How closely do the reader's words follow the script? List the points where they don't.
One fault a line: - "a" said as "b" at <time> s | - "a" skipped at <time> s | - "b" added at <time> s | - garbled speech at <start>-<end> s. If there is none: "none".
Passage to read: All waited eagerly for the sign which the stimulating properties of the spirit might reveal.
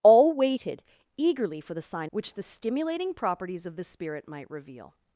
none